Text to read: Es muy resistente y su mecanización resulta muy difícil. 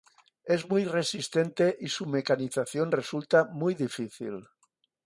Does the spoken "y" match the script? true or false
true